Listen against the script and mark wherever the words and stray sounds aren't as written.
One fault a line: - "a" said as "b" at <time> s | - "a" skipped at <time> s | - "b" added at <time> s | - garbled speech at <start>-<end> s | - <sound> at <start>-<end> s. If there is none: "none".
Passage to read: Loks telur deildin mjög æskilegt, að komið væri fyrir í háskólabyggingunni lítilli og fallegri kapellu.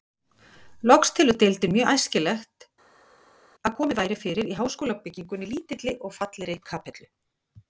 none